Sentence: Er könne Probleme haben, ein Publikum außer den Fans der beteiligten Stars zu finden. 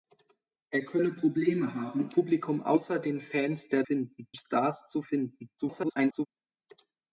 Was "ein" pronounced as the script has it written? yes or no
no